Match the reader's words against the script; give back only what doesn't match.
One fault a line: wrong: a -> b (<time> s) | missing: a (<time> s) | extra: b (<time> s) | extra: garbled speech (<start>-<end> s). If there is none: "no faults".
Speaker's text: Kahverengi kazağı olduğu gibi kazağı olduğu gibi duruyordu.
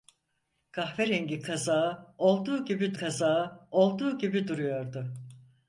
no faults